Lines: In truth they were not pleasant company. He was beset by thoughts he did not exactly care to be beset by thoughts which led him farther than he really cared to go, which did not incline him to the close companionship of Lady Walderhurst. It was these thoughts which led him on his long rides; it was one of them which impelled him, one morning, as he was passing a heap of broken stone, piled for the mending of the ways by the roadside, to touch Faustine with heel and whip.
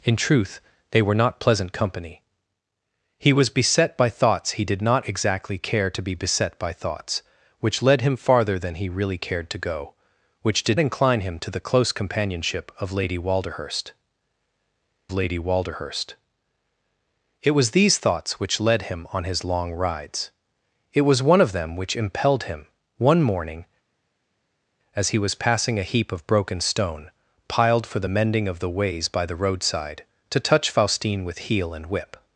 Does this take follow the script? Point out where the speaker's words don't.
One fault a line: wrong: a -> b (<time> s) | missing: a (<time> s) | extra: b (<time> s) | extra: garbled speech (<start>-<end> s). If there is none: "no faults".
missing: not (10.8 s)
extra: Lady Walderhurst (15.1 s)